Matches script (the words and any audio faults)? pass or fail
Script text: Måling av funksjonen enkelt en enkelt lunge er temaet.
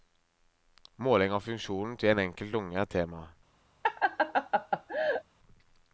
fail